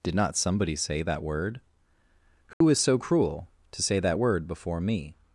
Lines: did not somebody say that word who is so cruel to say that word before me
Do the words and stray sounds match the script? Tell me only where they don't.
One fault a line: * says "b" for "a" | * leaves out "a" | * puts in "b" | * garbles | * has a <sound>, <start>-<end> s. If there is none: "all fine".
* has a dropout, 2.5-2.6 s